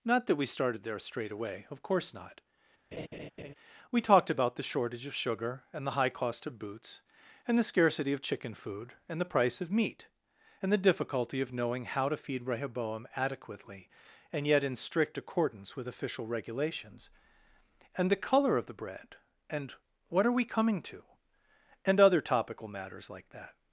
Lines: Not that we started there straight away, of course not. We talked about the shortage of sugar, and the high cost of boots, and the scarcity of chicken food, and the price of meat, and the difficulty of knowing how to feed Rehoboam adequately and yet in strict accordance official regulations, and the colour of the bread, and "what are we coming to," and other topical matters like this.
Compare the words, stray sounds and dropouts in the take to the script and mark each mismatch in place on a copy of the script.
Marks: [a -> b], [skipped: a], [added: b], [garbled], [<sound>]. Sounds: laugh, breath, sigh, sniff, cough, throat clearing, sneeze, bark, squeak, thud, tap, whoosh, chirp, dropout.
Not that we started there straight away, of course not. [laugh] We talked about the shortage of sugar, and the high cost of boots, and the scarcity of chicken food, and the price of meat, and the difficulty of knowing how to feed Rehoboam adequately and yet in strict accordance [added: with] official regulations, and the colour of the bread, and "what are we coming to," and other topical matters like [this. -> that]